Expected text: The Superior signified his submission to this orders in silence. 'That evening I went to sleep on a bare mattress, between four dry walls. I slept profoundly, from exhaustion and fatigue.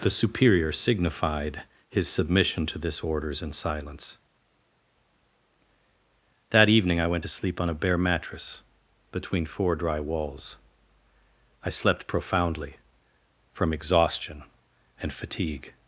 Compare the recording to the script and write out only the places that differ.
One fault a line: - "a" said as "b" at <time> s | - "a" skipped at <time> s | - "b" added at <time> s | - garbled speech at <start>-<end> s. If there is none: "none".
none